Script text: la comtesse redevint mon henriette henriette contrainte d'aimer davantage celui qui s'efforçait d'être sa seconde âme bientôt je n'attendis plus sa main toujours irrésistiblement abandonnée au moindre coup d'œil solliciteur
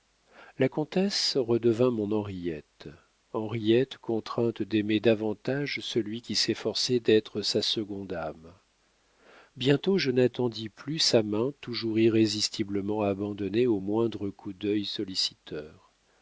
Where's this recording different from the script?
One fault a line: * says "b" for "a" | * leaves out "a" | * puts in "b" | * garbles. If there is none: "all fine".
all fine